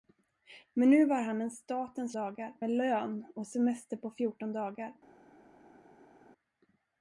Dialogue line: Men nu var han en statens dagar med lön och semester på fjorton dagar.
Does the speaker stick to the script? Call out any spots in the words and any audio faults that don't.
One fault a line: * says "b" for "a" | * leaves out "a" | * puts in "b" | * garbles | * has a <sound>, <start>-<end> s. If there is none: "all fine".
all fine